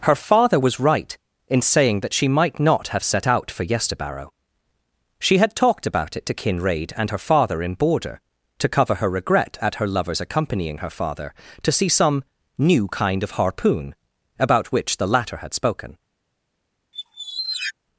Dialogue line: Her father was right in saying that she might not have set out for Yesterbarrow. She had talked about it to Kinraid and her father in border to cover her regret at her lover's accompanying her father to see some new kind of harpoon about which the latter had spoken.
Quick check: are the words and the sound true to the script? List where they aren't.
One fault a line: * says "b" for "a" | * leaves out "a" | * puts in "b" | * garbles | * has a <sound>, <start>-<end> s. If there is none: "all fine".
* has a squeak, 16.9-17.7 s